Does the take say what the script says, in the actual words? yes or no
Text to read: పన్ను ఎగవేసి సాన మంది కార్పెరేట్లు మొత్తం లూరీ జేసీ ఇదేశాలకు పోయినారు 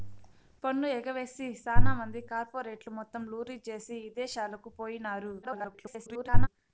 no